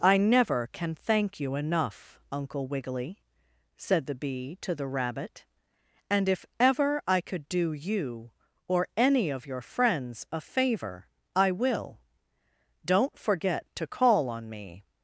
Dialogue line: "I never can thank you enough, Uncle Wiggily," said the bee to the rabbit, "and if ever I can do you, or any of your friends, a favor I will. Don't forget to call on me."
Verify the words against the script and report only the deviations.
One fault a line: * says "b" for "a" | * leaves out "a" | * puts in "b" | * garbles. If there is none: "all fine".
* says "could" for "can"